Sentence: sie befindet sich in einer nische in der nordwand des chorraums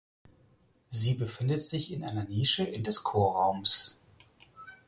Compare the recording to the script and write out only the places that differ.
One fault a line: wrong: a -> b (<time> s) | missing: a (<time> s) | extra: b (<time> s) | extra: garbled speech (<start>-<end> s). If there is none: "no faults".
missing: der nordwand (2.8 s)